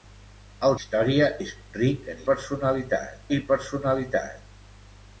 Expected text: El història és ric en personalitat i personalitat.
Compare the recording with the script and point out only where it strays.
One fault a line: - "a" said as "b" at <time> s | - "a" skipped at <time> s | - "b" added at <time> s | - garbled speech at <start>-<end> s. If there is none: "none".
none